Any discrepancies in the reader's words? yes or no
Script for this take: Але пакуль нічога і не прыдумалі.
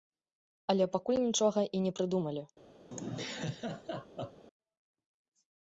no